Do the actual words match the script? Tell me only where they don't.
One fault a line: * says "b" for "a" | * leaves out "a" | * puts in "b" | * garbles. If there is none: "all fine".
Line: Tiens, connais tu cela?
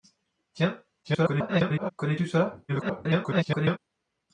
* garbles
* garbles